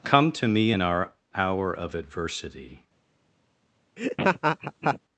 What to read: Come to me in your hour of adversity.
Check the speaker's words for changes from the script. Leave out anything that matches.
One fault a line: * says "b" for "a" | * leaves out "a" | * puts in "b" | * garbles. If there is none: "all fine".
* says "our" for "your"